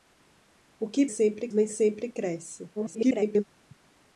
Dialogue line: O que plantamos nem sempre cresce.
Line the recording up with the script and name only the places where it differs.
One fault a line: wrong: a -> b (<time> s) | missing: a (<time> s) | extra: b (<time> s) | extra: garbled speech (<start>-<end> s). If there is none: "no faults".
wrong: plantamos -> sempre (1.1 s)
extra: garbled speech (2.8-3.4 s)